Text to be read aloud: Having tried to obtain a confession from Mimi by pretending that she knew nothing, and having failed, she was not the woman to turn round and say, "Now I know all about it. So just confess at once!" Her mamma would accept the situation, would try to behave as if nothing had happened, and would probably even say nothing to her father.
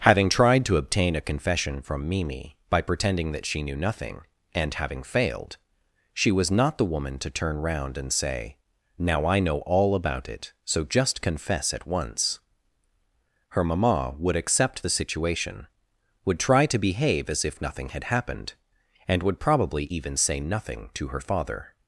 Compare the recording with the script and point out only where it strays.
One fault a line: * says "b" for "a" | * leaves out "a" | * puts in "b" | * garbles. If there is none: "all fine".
all fine